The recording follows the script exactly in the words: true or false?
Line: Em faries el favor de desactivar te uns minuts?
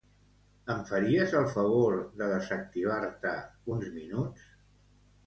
true